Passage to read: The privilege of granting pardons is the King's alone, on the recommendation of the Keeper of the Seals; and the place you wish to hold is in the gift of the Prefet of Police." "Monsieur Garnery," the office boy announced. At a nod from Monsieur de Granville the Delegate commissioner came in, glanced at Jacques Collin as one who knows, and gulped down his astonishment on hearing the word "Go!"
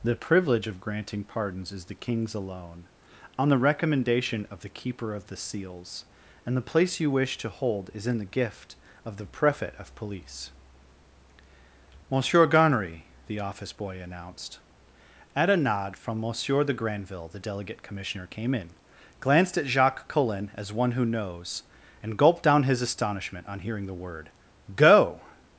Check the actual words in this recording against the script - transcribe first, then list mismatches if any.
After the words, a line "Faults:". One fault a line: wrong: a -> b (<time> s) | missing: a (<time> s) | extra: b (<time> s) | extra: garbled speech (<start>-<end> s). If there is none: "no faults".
The privilege of granting pardons is the King's alone, on the recommendation of the Keeper of the Seals; and the place you wish to hold is in the gift of the Prefet of Police." "Monsieur Garnery," the office boy announced. At a nod from Monsieur de Granville the Delegate commissioner came in, glanced at Jacques Collin as one who knows, and gulped down his astonishment on hearing the word "Go!"
Faults:
no faults